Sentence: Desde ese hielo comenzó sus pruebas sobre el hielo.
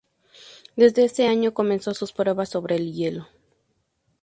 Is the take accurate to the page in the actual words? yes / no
no